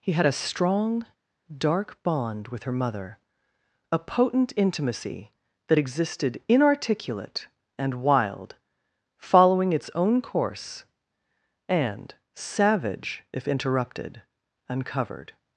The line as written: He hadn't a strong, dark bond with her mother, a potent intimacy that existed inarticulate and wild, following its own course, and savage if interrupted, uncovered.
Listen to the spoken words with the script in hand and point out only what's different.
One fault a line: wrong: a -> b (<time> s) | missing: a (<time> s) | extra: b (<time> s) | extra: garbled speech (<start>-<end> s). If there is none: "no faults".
wrong: hadn't -> had (0.1 s)